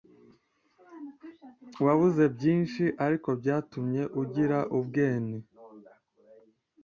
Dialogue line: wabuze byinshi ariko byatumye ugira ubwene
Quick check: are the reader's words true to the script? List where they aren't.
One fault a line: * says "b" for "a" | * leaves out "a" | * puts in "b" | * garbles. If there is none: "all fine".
all fine